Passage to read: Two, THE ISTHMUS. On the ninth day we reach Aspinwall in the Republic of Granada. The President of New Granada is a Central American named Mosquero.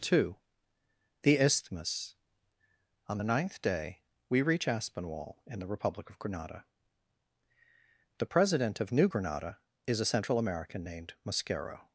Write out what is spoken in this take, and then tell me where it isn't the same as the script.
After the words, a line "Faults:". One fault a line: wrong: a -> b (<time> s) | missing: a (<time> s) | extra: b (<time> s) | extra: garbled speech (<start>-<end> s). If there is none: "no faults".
Two, THE ISTHMUS. On the ninth day we reach Aspinwall in the Republic of Granada. The President of New Granada is a Central American named Mosquero.
Faults:
no faults